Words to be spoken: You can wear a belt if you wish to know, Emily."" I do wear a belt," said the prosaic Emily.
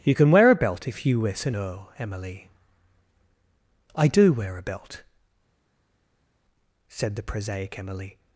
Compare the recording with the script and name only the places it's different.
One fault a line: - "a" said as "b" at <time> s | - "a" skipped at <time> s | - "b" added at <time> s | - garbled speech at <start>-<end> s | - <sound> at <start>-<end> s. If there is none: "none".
none